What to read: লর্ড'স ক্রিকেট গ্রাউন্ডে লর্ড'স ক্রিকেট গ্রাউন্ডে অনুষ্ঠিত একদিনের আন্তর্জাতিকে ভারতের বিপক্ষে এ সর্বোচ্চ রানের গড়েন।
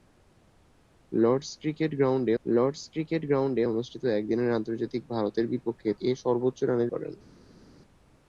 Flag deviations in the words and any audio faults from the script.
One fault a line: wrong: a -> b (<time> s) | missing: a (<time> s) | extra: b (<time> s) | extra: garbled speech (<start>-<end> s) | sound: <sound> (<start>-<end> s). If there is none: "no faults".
no faults